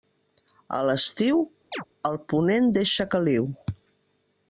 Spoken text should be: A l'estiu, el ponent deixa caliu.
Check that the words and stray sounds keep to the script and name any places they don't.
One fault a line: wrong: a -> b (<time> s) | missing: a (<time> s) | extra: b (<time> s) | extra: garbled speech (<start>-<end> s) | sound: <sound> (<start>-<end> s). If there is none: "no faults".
sound: chirp (1.7-1.9 s)